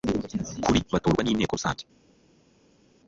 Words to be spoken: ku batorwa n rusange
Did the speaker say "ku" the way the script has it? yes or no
no